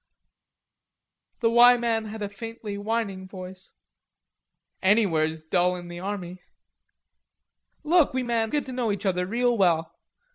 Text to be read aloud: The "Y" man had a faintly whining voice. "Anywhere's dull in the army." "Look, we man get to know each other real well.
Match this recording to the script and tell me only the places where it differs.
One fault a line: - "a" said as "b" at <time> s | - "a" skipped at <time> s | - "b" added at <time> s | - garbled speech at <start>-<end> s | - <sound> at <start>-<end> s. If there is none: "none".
none